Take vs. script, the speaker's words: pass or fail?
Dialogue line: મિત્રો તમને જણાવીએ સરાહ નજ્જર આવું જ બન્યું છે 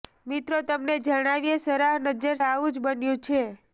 pass